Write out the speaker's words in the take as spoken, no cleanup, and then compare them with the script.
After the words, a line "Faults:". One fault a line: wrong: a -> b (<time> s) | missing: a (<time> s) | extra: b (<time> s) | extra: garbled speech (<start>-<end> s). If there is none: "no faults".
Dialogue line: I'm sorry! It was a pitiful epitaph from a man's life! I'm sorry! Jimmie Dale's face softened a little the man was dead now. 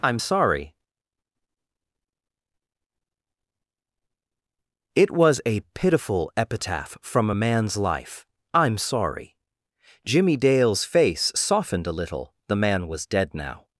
I'm sorry! It was a pitiful epitaph from a man's life! I'm sorry! Jimmie Dale's face softened a little the man was dead now.
Faults:
no faults